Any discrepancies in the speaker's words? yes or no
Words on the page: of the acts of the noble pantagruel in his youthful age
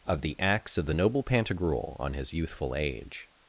yes